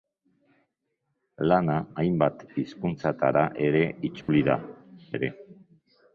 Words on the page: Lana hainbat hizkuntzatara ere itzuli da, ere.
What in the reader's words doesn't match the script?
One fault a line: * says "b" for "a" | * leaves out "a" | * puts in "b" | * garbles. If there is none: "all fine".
all fine